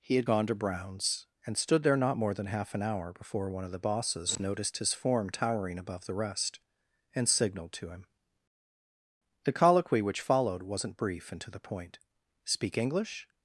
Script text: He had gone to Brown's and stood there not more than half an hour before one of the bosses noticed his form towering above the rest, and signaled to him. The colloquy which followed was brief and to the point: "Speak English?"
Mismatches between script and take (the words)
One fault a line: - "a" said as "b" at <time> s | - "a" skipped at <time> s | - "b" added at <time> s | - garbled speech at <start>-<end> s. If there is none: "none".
- "was" said as "wasn't" at 10.6 s